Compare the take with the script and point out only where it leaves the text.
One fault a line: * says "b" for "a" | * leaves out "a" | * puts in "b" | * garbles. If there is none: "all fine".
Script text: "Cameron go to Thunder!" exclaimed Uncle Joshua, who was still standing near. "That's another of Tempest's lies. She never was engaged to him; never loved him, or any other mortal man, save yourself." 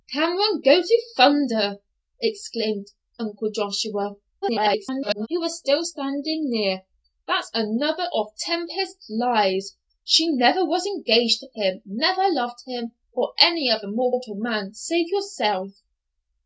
* garbles